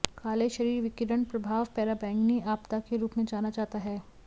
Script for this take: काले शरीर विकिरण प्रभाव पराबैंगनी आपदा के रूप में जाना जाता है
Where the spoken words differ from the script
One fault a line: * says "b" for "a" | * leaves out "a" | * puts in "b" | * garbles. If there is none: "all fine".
all fine